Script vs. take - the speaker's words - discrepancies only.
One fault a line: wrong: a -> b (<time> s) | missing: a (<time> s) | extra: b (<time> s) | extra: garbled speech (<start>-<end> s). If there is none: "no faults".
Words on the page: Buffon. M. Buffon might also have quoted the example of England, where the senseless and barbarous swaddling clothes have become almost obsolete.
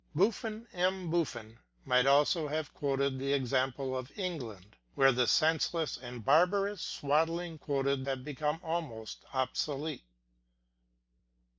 wrong: clothes -> quoted (7.6 s)